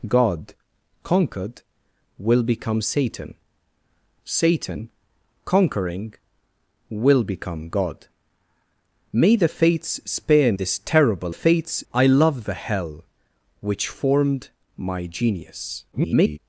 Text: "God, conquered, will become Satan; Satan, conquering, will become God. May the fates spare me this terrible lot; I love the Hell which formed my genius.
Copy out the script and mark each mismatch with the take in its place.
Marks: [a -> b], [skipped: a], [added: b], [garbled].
"God, conquered, will become Satan; Satan, conquering, will become God. May the fates spare [skipped: me] this terrible [lot; -> fates] I love the Hell which formed my genius. [garbled]